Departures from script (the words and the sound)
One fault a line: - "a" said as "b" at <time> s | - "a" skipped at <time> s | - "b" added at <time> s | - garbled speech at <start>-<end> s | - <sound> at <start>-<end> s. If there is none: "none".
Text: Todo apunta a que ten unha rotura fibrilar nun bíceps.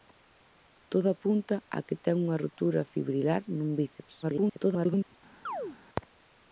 - garbled speech at 4.2-5.1 s
- chirp at 5.5-5.8 s